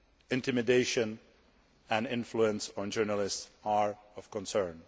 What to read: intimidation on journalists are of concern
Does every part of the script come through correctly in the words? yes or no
no